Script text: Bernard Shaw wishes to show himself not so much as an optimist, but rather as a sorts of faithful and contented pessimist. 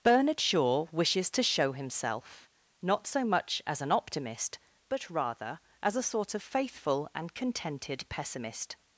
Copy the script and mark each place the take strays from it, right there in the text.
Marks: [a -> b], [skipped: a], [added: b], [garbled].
Bernard Shaw wishes to show himself not so much as an optimist, but rather as a [sorts -> sort] of faithful and contented pessimist.